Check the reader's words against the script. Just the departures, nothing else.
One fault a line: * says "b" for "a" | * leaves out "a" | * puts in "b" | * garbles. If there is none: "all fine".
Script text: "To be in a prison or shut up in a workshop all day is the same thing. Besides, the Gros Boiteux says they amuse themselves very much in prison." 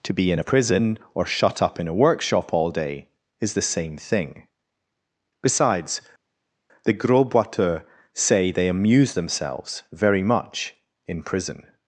* says "say" for "says"